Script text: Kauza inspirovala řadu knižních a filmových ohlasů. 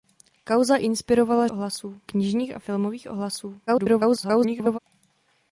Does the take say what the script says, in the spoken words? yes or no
no